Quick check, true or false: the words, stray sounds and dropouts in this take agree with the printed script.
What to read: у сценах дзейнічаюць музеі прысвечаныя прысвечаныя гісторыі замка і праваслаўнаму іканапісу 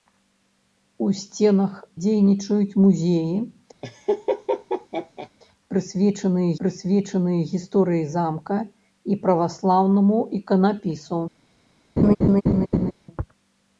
false